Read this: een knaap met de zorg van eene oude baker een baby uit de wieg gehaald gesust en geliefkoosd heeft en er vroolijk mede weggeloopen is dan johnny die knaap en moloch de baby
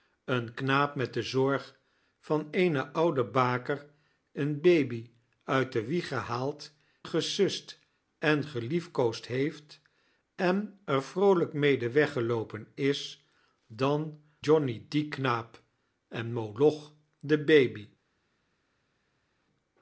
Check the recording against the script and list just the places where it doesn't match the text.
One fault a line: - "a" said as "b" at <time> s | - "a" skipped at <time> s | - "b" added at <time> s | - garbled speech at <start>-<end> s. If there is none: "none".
none